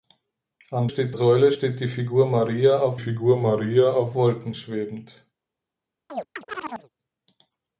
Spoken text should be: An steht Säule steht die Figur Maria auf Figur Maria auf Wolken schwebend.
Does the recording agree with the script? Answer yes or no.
yes